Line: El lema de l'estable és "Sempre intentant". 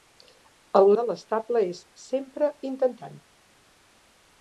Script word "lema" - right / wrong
wrong